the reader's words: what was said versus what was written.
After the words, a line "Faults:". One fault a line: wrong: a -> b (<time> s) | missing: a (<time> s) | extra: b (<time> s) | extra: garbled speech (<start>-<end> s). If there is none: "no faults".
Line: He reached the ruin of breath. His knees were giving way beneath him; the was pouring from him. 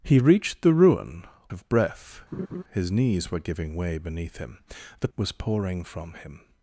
He reached the ruin of breath. His knees were giving way beneath him; the was pouring from him.
Faults:
no faults